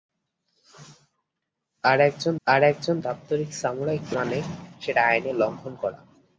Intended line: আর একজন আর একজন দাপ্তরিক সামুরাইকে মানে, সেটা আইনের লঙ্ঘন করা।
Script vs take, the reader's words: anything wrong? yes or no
no